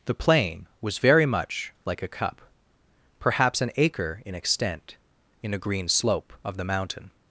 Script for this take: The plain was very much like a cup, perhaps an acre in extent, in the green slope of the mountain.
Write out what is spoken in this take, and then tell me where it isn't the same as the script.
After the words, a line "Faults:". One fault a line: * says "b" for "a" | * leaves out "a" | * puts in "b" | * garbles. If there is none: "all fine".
The plain was very much like a cup, perhaps an acre in extent, in a green slope of the mountain.
Faults:
* says "a" for "the"